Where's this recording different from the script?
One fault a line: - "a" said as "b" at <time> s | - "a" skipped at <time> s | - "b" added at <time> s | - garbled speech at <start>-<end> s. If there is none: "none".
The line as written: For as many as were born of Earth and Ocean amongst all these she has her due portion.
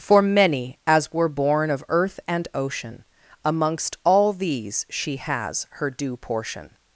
- "as" skipped at 0.2 s